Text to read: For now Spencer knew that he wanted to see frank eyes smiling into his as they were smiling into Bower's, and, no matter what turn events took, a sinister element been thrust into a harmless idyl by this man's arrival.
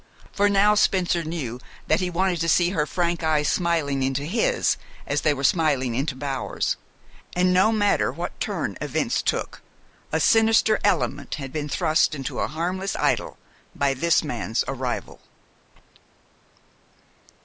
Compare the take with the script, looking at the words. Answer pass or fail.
fail